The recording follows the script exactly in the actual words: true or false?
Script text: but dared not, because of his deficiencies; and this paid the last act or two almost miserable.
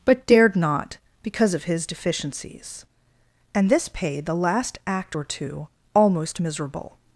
true